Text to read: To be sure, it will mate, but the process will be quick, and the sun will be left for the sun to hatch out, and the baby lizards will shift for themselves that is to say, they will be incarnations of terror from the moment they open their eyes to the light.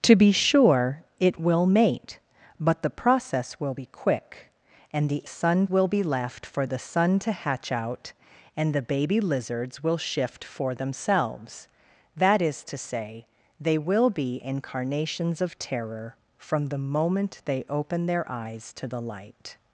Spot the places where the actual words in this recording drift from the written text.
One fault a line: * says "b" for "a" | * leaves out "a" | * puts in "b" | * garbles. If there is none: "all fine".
all fine